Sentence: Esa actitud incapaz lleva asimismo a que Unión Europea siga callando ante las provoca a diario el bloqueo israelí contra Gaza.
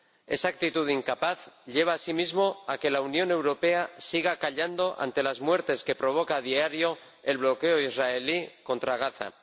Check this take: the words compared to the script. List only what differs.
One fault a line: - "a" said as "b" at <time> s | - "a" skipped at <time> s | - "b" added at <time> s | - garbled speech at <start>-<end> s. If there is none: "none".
- "la" added at 2.9 s
- "muertes que" added at 5.4 s